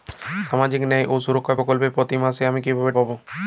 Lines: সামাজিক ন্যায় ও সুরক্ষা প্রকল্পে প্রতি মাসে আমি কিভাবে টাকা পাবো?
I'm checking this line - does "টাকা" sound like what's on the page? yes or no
no